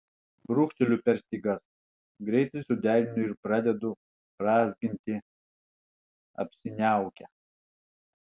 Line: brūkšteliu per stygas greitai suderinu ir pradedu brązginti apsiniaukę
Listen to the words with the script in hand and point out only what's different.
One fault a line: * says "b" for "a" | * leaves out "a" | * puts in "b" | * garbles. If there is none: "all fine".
all fine